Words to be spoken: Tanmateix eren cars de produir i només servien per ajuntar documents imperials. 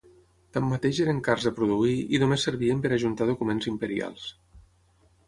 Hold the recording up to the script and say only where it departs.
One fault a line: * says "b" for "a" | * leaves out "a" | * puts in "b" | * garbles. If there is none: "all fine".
all fine